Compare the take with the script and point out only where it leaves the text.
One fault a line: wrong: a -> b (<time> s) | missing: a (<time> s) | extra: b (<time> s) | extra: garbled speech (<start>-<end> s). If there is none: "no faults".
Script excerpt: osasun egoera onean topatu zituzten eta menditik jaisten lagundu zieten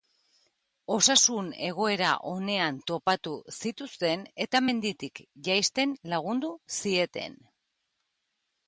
no faults